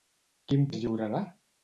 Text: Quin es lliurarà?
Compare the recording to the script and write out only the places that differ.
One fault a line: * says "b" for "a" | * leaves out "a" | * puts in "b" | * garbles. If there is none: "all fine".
all fine